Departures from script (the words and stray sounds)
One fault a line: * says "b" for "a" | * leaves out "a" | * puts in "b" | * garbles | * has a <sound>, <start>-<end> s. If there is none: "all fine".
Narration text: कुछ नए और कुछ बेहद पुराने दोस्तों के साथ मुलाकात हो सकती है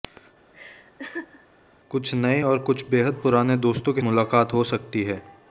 * has a laugh, 0.5-1.5 s
* leaves out "साथ"